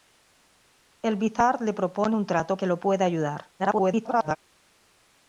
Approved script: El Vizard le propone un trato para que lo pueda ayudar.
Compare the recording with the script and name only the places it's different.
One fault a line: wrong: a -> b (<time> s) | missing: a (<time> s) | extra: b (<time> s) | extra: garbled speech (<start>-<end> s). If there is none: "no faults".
missing: para (2.6 s)
extra: garbled speech (3.6-4.4 s)